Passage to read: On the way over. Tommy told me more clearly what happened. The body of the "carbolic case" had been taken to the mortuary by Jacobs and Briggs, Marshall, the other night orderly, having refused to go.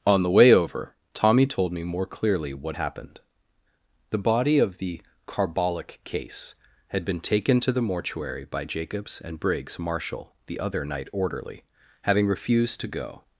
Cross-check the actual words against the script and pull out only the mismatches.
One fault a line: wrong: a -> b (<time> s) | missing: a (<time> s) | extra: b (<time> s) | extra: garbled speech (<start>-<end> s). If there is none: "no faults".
no faults